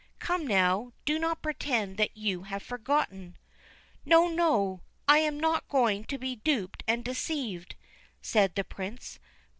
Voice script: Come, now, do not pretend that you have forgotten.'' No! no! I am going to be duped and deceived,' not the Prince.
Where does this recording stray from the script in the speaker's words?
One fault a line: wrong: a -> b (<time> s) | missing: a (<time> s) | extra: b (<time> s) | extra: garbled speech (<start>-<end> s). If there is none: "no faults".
extra: not (5.4 s)
wrong: not -> said (8.2 s)